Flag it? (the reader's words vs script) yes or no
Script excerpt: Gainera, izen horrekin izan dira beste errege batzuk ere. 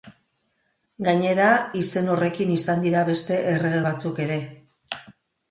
no